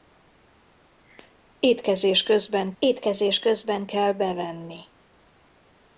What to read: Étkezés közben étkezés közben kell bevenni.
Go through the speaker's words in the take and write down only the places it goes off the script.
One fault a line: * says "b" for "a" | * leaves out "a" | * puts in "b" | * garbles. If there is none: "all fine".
all fine